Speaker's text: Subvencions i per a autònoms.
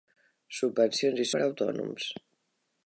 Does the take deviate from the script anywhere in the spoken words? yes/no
no